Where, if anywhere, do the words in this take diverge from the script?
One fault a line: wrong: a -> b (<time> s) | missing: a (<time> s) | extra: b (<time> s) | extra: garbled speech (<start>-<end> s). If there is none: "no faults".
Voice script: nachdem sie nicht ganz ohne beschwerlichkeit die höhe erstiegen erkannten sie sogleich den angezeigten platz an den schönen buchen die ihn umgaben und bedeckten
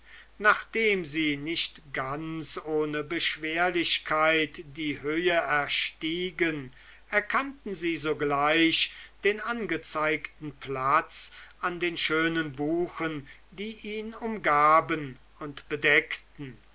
no faults